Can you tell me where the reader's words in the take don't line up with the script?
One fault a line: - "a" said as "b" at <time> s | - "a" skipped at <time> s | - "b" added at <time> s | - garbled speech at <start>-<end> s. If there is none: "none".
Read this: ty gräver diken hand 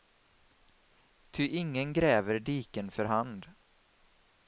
- "ingen" added at 1.5 s
- "för" added at 2.9 s